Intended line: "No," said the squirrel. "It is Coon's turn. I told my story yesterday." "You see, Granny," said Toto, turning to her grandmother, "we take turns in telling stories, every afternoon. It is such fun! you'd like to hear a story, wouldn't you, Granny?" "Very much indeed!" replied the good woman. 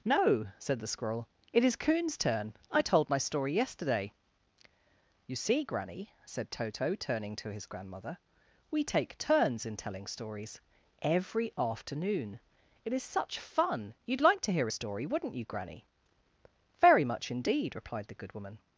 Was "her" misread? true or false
true